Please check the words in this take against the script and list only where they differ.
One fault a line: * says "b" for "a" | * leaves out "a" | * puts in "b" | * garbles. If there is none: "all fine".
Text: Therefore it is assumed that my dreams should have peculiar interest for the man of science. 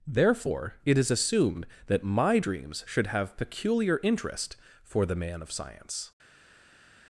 all fine